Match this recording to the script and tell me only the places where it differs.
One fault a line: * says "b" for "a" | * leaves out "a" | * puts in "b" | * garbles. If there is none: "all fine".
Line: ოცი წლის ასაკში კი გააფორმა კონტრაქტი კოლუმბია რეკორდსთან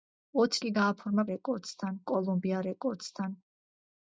* leaves out "წლის ასაკში"
* says "რეკორდსთან" for "კონტრაქტი"